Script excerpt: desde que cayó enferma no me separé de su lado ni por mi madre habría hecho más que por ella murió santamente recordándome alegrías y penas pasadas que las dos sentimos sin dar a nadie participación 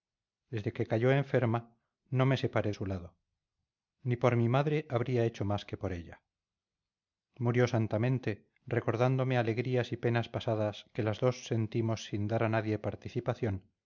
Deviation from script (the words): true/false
true